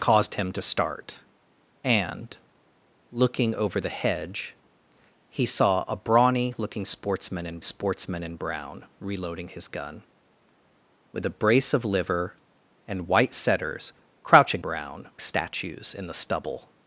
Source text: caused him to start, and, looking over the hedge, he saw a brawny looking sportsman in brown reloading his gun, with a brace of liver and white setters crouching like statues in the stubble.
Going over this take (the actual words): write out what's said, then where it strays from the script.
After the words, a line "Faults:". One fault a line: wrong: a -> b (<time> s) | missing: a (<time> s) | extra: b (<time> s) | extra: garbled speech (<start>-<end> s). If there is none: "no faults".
caused him to start, and, looking over the hedge, he saw a brawny looking sportsman in sportsman in brown reloading his gun, with a brace of liver and white setters crouching brown statues in the stubble.
Faults:
extra: sportsman in (7.6 s)
wrong: like -> brown (14.6 s)